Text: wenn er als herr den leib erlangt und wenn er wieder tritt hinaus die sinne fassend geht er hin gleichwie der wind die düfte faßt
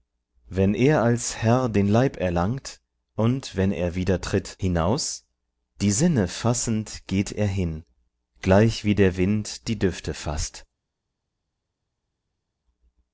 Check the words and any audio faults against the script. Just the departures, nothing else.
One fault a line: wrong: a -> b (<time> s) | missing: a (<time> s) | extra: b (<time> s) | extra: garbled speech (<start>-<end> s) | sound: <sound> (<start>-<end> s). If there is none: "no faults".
no faults